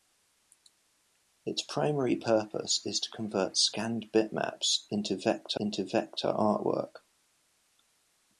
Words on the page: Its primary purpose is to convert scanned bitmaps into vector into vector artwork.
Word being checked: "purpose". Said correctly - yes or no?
yes